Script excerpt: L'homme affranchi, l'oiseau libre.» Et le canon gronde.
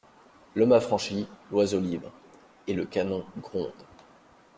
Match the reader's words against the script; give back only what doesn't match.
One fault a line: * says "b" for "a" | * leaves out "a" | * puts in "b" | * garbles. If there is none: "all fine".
all fine